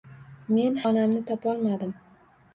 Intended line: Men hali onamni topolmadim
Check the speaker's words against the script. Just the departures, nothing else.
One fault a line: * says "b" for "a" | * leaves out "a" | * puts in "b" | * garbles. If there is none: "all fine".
* leaves out "hali"